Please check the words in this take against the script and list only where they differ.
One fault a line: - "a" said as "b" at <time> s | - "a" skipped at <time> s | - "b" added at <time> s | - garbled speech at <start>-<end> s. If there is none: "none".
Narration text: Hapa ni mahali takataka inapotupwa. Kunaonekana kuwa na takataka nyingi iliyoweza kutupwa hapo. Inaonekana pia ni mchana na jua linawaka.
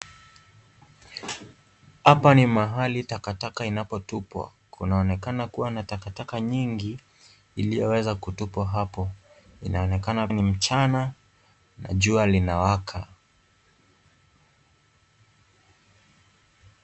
- "pia" skipped at 10.3 s